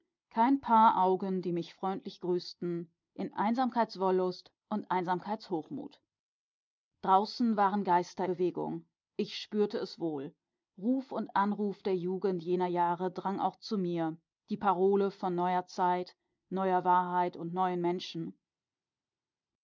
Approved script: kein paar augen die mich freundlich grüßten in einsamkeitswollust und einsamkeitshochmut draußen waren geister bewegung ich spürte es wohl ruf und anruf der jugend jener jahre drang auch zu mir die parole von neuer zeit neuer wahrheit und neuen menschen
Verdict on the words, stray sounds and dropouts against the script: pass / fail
pass